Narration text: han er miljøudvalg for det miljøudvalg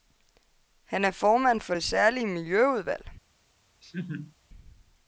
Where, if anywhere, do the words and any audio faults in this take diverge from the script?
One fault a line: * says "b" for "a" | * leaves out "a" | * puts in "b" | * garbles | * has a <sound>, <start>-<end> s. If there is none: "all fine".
* says "formand" for "miljøudvalg"
* puts in "særlige"
* has a laugh, 3.8-4.3 s